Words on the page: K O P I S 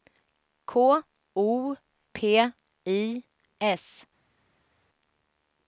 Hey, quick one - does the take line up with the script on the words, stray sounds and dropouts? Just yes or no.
yes